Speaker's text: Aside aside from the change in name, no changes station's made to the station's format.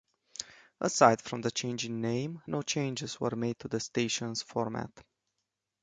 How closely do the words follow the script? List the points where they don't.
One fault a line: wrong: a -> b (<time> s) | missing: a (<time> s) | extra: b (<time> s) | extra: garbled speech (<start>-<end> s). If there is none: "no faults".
missing: aside (1.2 s)
wrong: station's -> were (3.2 s)